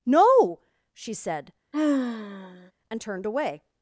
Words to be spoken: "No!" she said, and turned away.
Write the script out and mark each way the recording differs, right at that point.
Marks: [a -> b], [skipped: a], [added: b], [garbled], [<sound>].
"No!" she said, [sigh] and turned away.